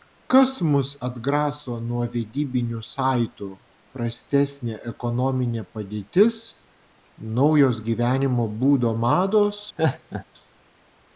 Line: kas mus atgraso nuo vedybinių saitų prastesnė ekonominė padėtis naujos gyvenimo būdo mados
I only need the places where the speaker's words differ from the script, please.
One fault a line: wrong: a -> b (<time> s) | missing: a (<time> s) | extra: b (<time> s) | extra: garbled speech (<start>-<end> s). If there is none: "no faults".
no faults